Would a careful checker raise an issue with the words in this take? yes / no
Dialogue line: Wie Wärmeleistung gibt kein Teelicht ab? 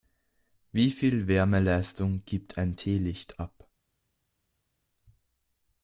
yes